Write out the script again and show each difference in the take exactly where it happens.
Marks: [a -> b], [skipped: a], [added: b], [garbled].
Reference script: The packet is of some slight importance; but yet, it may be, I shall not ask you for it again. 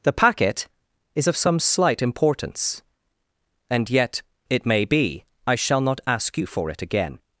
The packet is of some slight importance; [but -> and] yet, it may be, I shall not ask you for it again.